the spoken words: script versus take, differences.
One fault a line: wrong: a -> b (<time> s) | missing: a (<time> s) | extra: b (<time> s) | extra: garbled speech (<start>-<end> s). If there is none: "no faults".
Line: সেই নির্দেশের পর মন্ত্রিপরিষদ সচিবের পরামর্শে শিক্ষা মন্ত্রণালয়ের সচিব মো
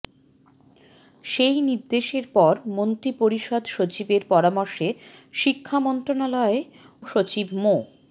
no faults